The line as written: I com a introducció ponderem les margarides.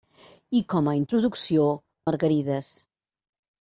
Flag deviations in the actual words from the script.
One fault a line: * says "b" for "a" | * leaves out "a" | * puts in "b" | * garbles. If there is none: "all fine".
* leaves out "ponderem les"